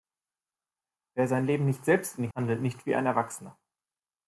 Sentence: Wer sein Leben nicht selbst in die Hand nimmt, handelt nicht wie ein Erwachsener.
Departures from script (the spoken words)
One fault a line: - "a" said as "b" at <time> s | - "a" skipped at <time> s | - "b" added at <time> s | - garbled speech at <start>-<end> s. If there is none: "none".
- "Hand nimmt" skipped at 2.3 s